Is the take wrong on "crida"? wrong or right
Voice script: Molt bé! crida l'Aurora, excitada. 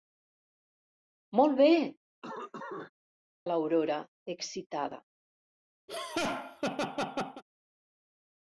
wrong